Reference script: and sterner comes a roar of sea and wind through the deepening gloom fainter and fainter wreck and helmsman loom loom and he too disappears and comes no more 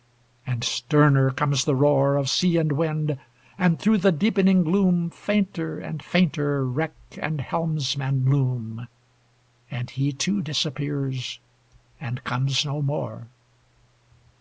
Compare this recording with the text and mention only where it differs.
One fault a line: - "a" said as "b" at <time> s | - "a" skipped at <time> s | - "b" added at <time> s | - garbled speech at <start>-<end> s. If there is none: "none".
- "a" said as "the" at 1.6 s
- "and" added at 3.6 s
- "loom" skipped at 8.9 s